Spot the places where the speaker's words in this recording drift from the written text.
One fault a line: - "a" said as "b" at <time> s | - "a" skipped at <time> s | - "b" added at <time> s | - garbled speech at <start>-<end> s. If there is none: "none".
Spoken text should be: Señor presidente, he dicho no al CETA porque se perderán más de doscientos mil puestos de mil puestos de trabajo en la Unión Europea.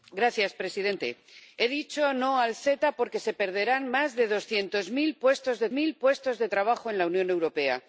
none